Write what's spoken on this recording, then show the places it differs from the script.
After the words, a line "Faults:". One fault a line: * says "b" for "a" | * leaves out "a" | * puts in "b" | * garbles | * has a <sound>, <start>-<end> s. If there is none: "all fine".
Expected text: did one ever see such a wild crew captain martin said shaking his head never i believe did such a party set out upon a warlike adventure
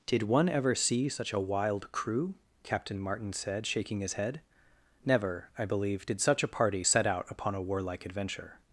did one ever see such a wild crew captain martin said shaking his head never i believe did such a party set out upon a warlike adventure
Faults:
all fine